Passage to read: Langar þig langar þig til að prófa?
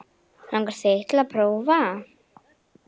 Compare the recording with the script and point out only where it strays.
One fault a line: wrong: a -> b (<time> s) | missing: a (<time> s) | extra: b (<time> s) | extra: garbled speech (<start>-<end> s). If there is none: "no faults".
missing: langar þig (1.0 s)